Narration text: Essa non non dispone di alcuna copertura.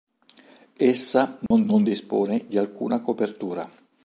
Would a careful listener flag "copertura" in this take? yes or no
no